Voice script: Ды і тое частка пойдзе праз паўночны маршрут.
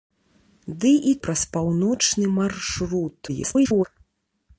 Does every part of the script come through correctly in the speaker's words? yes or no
no